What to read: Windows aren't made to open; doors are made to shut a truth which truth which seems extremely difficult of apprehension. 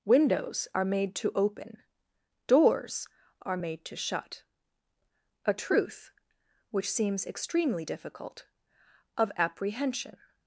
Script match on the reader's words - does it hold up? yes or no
no